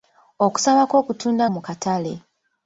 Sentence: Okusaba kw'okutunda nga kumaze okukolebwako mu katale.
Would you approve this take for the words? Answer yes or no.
no